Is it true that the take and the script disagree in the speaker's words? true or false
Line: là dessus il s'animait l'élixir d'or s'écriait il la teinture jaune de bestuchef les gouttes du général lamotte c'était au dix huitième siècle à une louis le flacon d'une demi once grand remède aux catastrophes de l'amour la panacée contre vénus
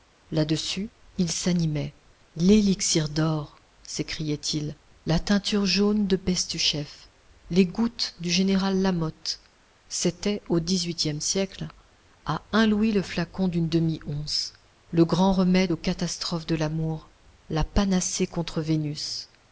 true